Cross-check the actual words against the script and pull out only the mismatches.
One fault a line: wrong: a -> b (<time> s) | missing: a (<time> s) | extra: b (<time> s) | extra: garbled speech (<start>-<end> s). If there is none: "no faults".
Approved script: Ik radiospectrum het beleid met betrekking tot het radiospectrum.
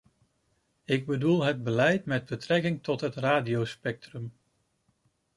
wrong: radiospectrum -> bedoel (1.1 s)